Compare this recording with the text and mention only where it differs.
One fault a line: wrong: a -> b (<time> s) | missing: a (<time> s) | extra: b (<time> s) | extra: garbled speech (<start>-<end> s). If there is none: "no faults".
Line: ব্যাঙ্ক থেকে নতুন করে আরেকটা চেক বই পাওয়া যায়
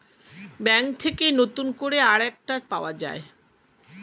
missing: চেক বই (2.5 s)